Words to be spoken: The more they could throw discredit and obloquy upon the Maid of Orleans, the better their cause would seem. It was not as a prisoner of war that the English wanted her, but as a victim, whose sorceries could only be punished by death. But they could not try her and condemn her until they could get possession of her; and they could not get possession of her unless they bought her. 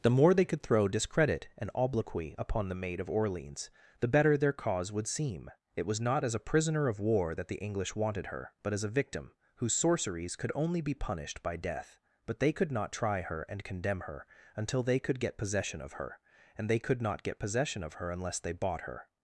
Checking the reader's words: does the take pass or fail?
pass